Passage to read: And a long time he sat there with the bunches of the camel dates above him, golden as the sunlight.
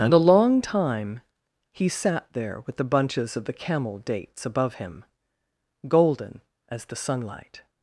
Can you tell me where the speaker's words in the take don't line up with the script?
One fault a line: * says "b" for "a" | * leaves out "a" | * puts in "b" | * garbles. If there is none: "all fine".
all fine